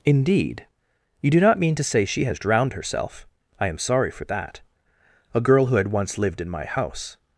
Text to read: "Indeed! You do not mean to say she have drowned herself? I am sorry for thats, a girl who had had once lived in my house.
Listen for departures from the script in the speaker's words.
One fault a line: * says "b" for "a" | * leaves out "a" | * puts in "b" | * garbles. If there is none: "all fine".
* says "has" for "have"
* says "that" for "thats"
* leaves out "had"